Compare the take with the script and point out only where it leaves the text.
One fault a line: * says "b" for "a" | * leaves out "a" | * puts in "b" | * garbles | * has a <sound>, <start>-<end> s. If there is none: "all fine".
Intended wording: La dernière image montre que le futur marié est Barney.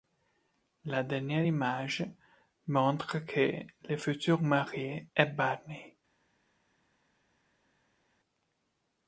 all fine